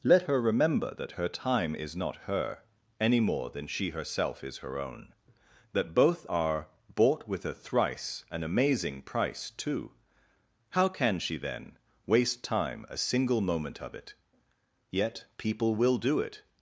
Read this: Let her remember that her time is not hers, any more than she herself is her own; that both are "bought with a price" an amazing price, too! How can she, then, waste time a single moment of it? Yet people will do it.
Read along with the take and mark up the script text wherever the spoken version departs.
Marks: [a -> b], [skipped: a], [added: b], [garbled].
Let her remember that her time is not [hers, -> her] any more than she herself is her own; that both are "bought with a [price" -> thrice] an amazing price, too! How can she, then, waste time a single moment of it? Yet people will do it.